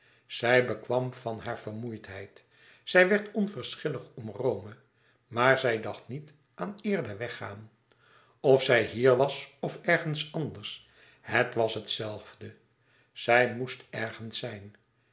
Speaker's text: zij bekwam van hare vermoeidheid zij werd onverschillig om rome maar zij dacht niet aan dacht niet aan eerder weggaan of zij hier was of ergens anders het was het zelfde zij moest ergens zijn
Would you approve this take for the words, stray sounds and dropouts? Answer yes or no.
no